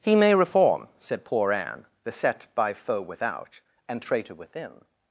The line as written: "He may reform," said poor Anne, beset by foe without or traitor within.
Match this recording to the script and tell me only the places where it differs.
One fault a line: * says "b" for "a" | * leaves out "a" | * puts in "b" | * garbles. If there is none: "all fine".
* says "and" for "or"